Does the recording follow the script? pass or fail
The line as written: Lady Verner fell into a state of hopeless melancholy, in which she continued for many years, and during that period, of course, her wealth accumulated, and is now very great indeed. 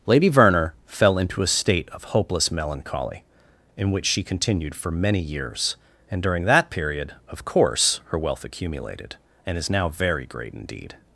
pass